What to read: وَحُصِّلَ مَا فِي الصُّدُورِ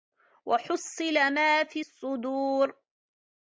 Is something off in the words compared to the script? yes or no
no